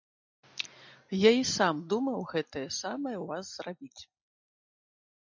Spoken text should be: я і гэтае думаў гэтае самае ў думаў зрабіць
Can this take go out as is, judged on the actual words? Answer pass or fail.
fail